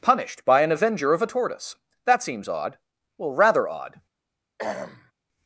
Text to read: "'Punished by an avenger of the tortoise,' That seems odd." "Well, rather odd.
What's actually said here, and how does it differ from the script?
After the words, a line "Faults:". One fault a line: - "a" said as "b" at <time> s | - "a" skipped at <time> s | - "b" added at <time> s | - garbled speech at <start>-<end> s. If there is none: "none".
"'Punished by an avenger of a tortoise,' That seems odd." "Well, rather odd.
Faults:
- "the" said as "a" at 1.2 s